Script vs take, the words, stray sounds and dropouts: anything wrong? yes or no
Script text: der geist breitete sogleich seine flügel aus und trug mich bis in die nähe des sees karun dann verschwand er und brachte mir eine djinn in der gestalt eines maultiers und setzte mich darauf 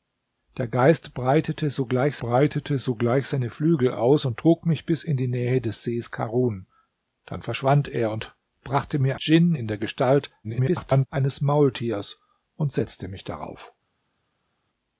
yes